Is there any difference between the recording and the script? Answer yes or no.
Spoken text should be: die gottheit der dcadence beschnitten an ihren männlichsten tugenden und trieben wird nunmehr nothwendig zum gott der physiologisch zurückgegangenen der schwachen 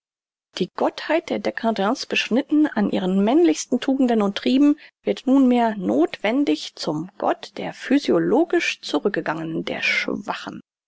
no